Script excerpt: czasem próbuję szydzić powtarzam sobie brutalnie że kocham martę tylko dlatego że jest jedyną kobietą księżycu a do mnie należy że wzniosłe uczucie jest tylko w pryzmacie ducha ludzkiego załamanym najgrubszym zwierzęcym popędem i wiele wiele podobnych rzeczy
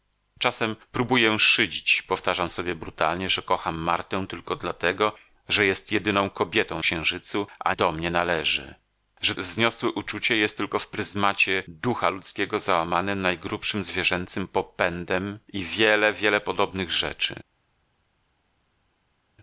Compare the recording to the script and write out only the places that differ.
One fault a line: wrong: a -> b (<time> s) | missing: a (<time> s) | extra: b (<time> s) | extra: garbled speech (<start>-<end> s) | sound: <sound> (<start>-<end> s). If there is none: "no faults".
no faults